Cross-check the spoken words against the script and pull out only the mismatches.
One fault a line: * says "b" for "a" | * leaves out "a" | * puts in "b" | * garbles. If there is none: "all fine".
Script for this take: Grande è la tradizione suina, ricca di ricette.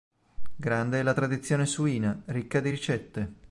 all fine